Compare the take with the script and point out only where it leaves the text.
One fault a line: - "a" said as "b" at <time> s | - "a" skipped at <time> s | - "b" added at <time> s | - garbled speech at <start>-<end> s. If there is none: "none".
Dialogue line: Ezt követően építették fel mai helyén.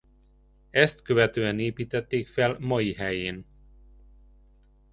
none